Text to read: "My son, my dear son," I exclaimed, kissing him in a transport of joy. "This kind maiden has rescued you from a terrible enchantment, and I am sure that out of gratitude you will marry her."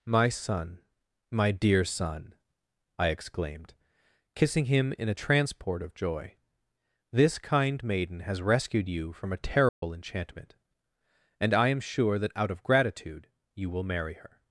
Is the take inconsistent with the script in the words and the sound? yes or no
yes